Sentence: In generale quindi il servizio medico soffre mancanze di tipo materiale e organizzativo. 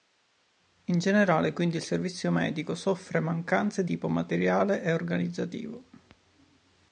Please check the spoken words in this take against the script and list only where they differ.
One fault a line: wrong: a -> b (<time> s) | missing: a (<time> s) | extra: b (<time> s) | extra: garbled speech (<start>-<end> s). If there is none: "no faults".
missing: di (3.9 s)